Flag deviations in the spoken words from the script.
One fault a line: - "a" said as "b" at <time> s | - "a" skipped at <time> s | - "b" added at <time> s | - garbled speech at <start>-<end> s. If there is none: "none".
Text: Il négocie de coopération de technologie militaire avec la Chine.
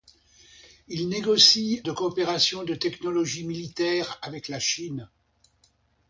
none